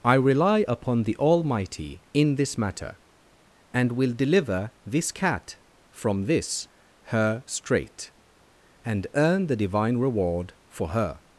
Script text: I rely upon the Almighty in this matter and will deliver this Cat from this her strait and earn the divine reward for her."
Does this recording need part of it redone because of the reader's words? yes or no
no